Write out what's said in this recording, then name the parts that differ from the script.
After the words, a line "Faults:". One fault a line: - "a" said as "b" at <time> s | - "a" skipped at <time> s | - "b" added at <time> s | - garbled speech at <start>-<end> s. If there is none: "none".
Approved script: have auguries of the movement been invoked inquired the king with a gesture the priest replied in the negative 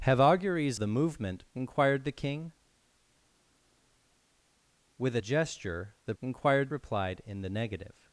have auguries the movement inquired the king with a gesture the inquired replied in the negative
Faults:
- "of" skipped at 0.8 s
- "been invoked" skipped at 1.5 s
- "priest" said as "inquired" at 6.2 s